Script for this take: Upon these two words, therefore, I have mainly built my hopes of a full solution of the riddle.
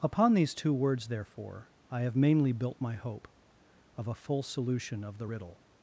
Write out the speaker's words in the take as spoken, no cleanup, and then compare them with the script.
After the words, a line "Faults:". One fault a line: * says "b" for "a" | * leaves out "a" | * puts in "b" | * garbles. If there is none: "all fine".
Upon these two words, therefore, I have mainly built my hope of a full solution of the riddle.
Faults:
* says "hope" for "hopes"